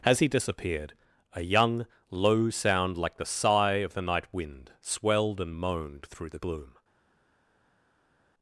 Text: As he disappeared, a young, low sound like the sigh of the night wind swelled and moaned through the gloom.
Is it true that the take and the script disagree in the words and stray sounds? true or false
false